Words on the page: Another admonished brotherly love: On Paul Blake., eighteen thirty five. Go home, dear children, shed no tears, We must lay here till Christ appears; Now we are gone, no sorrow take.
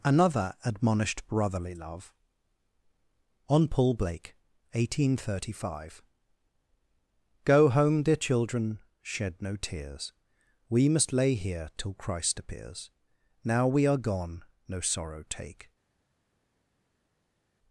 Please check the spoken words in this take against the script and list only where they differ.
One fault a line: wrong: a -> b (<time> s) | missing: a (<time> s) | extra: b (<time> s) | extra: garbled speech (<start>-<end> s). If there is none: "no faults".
no faults